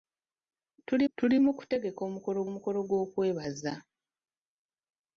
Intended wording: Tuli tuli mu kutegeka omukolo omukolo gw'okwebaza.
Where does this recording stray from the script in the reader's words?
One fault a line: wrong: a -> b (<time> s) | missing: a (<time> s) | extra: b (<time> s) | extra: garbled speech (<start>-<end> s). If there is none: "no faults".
no faults